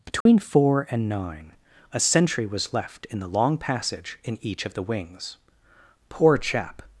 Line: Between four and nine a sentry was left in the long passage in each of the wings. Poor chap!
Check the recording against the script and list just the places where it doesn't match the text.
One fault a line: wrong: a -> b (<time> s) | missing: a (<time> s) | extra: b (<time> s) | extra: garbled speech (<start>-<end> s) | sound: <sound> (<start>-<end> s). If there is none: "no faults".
sound: dropout (0.2-0.3 s)